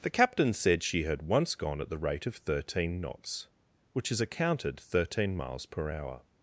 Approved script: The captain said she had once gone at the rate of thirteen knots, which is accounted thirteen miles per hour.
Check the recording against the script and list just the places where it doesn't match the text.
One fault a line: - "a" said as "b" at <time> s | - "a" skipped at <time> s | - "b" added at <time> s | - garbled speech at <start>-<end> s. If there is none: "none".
none